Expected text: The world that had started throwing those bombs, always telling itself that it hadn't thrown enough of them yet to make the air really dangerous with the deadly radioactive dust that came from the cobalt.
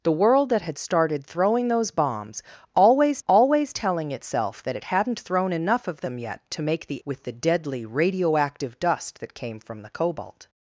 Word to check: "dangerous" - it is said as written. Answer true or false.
false